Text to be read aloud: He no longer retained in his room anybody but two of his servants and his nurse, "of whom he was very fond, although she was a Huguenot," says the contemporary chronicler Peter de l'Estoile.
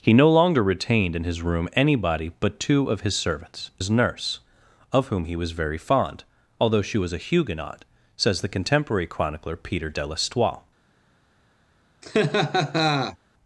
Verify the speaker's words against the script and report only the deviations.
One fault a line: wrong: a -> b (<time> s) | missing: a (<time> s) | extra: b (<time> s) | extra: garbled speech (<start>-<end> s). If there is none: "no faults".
missing: and (3.7 s)